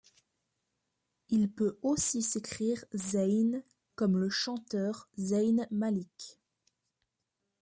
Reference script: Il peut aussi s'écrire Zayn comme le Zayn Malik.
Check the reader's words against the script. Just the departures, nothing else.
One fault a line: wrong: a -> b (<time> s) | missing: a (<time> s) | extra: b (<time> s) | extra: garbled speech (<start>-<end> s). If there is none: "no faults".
extra: chanteur (4.3 s)